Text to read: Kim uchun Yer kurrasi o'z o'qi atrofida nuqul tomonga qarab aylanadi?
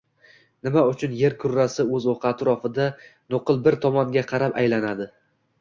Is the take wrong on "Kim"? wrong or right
wrong